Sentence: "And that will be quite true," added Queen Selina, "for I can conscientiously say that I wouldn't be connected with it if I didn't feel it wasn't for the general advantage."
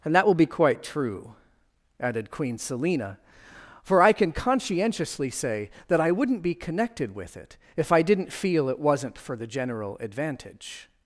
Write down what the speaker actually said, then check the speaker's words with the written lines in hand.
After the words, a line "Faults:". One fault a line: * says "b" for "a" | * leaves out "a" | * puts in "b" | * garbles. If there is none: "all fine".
"And that will be quite true," added Queen Selina, "for I can conscientiously say that I wouldn't be connected with it if I didn't feel it wasn't for the general advantage."
Faults:
all fine